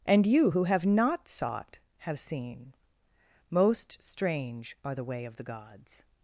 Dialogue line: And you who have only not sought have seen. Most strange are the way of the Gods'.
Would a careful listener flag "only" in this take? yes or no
yes